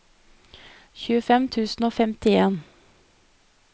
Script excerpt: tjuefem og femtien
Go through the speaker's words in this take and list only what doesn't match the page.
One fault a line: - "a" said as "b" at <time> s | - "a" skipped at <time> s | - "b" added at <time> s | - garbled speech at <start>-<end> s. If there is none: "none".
- "tusen" added at 1.6 s